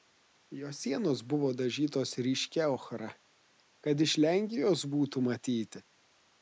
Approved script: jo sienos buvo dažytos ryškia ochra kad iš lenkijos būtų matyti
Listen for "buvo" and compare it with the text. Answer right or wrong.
right